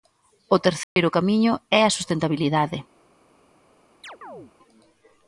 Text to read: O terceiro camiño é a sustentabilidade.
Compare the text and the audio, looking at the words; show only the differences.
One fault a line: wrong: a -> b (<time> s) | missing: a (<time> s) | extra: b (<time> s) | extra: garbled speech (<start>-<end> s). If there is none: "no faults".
no faults